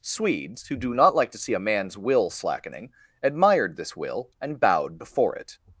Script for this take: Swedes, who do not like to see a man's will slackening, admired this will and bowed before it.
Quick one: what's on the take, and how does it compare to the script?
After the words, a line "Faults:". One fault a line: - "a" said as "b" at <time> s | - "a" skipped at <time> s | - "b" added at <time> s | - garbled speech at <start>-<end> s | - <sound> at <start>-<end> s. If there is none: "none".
Swedes, who do not like to see a man's will slackening, admired this will and bowed before it.
Faults:
none